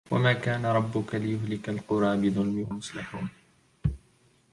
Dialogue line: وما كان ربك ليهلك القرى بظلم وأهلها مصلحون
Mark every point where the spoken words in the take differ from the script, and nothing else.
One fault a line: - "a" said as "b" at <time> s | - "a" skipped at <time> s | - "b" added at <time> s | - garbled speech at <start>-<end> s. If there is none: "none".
- "وأهلها" skipped at 2.7 s